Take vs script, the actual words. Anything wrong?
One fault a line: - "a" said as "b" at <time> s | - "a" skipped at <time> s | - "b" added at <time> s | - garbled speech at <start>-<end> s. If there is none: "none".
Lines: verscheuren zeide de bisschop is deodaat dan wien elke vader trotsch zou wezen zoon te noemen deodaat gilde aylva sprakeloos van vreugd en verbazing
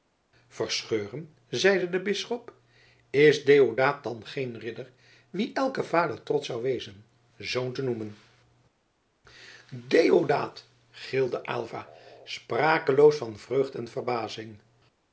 - "geen ridder" added at 4.2 s